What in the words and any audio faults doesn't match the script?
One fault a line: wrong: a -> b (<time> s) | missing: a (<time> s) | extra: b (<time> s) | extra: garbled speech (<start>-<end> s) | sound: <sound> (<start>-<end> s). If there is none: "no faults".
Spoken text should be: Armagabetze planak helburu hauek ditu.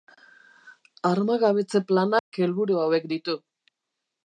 sound: dropout (2.2-2.3 s)